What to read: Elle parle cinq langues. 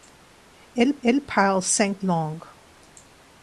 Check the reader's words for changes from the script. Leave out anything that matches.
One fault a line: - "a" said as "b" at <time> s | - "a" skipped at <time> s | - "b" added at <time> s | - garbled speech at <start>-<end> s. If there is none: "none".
- "elle" added at 1.0 s